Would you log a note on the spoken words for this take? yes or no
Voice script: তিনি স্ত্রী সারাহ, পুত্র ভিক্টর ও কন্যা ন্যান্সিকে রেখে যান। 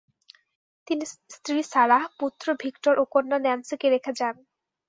no